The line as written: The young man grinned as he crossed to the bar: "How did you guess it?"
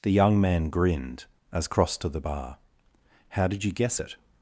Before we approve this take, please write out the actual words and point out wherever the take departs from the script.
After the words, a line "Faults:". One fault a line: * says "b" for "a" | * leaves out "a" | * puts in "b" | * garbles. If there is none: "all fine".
The young man grinned as crossed to the bar: "How did you guess it?"
Faults:
* leaves out "he"